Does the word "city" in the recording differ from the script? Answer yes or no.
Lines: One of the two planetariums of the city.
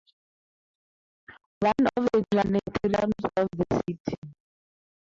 no